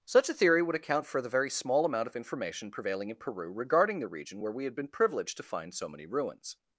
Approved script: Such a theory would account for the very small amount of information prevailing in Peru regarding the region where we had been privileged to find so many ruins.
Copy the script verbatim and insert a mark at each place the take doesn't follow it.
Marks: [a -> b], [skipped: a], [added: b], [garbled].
Such a theory would account for the very small amount of information prevailing in Peru regarding the region where we had been privileged to find so many ruins.